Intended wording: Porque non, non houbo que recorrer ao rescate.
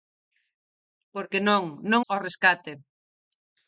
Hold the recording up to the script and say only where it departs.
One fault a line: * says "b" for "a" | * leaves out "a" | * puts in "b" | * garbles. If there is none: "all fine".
* leaves out "houbo que recorrer"